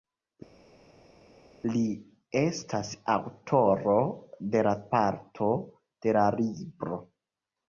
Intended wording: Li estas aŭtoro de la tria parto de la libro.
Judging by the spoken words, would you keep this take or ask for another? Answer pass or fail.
fail